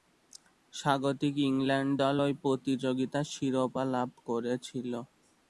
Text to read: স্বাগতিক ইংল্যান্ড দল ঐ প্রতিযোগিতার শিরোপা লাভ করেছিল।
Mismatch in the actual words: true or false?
false